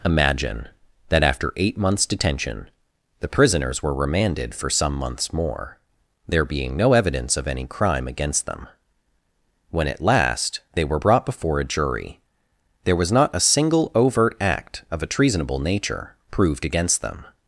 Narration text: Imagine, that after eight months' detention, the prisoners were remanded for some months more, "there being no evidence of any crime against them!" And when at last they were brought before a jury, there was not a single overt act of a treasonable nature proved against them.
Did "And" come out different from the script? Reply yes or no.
yes